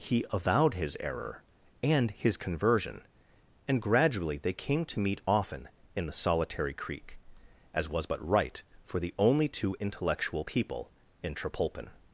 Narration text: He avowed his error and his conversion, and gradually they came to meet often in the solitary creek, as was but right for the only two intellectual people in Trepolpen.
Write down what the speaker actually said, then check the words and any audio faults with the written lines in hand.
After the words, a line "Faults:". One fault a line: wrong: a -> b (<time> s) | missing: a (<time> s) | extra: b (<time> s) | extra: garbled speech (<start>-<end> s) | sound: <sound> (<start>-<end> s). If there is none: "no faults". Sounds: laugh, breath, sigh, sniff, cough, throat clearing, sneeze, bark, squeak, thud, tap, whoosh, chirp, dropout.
He avowed his error and his conversion, and gradually they came to meet often in the solitary creek, as was but right for the only two intellectual people in Trepolpen.
Faults:
no faults